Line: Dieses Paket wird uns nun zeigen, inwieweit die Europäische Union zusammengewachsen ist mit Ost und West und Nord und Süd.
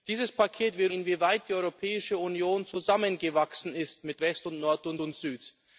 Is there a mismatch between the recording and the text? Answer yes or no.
yes